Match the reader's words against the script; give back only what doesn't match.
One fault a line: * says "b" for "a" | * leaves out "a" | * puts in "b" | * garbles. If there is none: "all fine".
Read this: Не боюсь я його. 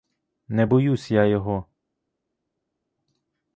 all fine